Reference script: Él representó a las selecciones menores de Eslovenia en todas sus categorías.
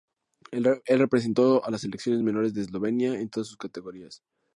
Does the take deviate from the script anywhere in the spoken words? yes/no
no